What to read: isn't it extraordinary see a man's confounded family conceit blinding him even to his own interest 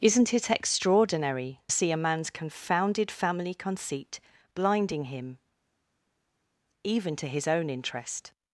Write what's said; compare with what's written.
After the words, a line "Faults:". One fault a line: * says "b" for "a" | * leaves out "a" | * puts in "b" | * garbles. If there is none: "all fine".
isn't it extraordinary see a man's confounded family conceit blinding him even to his own interest
Faults:
all fine